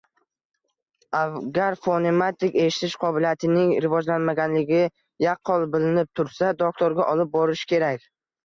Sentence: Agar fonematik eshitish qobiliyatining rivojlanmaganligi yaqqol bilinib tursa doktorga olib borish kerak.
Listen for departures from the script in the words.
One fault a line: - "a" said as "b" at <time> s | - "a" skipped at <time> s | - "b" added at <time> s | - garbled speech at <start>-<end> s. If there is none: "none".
none